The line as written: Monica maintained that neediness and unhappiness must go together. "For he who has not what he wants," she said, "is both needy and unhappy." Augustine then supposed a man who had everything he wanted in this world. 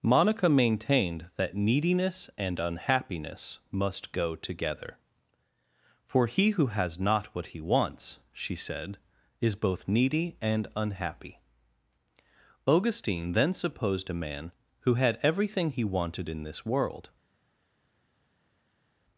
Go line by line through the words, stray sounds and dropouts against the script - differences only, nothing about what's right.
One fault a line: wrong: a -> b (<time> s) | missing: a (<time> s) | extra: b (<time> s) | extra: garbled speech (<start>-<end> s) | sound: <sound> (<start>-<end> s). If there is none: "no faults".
no faults